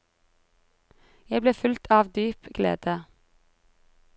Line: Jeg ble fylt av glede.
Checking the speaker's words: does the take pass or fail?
fail